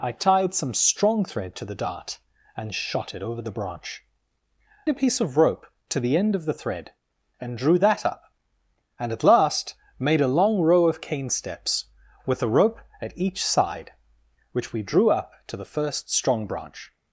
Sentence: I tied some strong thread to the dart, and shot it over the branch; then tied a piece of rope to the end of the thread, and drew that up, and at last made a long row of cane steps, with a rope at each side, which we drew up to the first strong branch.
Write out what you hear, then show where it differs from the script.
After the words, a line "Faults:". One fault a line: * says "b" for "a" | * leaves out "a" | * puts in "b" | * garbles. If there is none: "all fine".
I tied some strong thread to the dart, and shot it over the branch; a piece of rope to the end of the thread, and drew that up, and at last made a long row of cane steps, with a rope at each side, which we drew up to the first strong branch.
Faults:
* leaves out "then tied"